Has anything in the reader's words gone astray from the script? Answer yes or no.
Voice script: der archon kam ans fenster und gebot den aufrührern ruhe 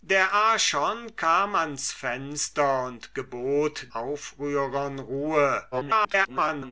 yes